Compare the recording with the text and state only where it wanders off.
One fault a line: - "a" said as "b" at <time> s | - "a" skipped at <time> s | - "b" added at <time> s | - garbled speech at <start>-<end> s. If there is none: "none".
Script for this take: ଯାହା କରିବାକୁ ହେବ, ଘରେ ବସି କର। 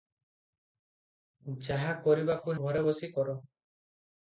- "ହେବ" skipped at 2.5 s